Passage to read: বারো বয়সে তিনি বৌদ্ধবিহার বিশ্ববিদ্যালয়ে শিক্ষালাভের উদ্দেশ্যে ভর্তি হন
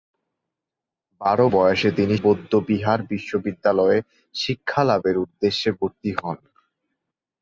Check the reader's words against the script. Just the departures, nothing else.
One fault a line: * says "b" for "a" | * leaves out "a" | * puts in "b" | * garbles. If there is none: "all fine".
all fine